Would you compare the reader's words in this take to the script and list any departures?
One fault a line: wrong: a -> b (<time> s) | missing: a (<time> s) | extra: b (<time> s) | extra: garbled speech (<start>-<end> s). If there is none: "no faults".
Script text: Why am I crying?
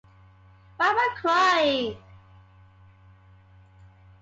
no faults